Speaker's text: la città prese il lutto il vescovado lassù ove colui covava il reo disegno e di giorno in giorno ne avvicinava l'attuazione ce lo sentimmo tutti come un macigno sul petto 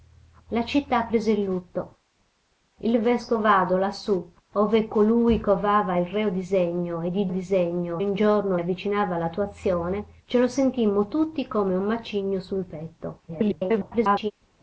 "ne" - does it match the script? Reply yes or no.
no